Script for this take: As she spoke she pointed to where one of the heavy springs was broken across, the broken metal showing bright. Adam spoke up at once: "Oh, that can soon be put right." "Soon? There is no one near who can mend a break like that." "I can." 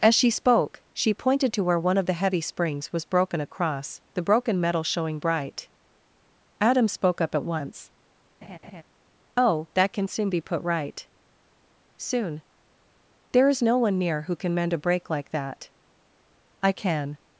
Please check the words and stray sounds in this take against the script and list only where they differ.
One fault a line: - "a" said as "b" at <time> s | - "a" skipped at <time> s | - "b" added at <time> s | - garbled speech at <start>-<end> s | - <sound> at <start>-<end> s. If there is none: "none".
- laugh at 8.4-8.8 s